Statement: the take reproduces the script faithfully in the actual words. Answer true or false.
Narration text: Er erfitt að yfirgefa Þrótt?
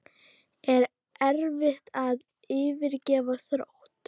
true